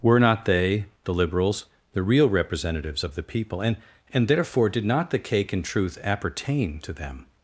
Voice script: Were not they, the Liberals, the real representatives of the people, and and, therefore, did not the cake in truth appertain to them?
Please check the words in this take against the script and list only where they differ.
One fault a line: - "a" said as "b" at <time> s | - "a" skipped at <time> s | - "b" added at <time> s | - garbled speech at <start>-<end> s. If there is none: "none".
none